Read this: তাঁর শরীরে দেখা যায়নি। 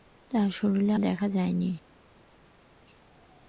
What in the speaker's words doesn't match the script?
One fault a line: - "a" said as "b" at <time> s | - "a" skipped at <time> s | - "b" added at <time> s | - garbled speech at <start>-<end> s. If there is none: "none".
none